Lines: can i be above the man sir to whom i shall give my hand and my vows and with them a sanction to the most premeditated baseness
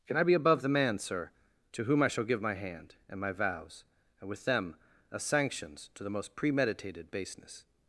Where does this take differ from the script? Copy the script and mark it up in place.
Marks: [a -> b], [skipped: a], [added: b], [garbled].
can i be above the man sir to whom i shall give my hand and my vows and with them a [sanction -> sanctions] to the most premeditated baseness